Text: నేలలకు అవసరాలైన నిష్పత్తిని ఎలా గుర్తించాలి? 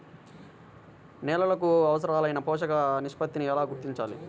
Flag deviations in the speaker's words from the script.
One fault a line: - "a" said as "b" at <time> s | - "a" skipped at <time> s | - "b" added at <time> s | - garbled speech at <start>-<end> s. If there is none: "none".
- "పోషక" added at 2.4 s